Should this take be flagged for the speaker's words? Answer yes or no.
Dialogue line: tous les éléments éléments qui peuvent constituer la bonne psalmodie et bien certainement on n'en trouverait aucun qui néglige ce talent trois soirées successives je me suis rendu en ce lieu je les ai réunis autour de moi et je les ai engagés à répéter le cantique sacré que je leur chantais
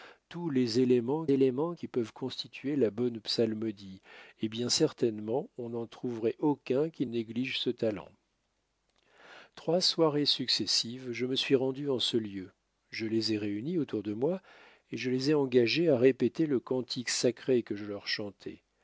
no